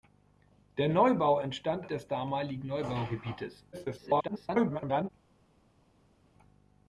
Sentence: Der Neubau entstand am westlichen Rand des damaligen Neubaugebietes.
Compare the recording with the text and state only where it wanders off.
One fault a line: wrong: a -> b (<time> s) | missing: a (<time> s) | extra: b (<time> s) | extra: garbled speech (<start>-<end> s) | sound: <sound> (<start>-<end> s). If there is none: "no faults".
missing: am westlichen Rand (1.9 s)
extra: garbled speech (3.7-5.1 s)